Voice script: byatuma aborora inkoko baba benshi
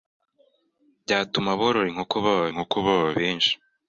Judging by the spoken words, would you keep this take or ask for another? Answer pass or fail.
fail